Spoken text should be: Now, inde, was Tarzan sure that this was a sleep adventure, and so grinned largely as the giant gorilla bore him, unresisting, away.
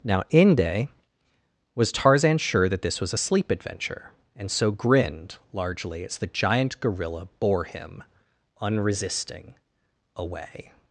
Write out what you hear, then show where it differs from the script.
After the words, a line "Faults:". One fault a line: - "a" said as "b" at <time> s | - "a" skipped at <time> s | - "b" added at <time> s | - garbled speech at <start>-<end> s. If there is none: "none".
Now, inde, was Tarzan sure that this was a sleep adventure, and so grinned largely as the giant gorilla bore him, unresisting, away.
Faults:
none